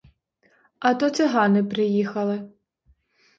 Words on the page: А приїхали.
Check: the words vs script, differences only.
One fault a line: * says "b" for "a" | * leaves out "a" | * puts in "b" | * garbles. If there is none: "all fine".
* puts in "то цигани"